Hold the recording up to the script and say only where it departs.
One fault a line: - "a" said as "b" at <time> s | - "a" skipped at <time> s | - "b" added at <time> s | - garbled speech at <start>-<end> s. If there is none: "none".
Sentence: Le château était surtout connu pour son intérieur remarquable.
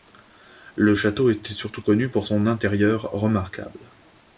none